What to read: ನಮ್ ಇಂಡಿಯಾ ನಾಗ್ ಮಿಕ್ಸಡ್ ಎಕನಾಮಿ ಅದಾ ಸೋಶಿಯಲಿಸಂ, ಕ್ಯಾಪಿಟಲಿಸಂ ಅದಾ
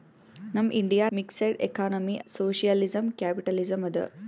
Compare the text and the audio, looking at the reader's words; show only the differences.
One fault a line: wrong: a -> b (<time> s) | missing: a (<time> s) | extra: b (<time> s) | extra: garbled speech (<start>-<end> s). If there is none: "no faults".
missing: ನಾಗ್ (1.1 s)
missing: ಅದಾ (2.2 s)